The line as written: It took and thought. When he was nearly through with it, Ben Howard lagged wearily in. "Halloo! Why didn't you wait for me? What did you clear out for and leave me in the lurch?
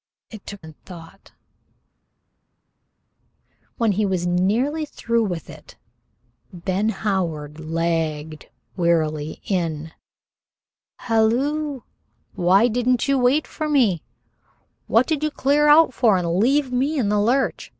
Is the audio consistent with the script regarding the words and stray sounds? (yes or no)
yes